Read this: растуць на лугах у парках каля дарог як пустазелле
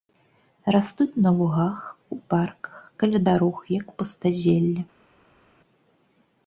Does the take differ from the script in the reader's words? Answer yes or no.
no